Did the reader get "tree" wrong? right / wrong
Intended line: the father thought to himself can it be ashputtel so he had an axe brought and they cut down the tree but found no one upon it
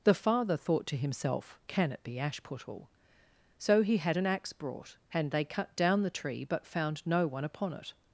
right